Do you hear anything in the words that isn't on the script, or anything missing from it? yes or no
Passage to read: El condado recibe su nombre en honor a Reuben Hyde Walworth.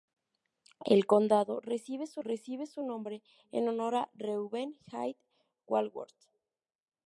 yes